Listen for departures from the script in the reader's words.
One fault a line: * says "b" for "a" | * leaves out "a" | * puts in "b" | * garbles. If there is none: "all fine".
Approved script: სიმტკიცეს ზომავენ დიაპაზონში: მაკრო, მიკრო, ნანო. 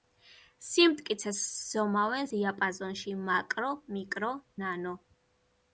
all fine